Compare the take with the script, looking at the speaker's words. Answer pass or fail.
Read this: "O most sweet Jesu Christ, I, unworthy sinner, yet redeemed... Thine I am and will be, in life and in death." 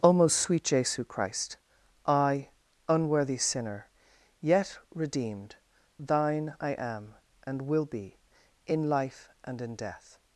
pass